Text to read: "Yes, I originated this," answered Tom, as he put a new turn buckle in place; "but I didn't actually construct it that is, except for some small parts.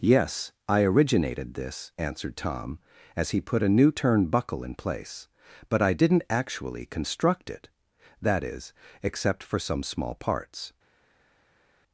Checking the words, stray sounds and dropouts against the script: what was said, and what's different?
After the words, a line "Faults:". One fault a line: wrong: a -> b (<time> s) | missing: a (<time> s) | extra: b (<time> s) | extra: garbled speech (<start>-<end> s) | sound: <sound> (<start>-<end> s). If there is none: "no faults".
"Yes, I originated this," answered Tom, as he put a new turn buckle in place; "but I didn't actually construct it that is, except for some small parts.
Faults:
no faults